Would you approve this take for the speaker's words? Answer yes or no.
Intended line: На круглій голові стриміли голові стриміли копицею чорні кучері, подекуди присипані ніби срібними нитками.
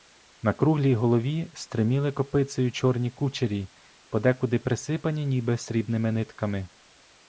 no